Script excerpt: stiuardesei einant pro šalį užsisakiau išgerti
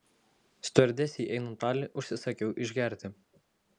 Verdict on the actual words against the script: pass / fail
fail